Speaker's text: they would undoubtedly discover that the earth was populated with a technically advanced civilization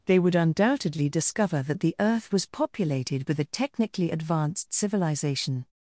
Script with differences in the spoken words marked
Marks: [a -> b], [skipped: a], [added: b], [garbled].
they would undoubtedly discover that the earth was populated with a technically advanced civilization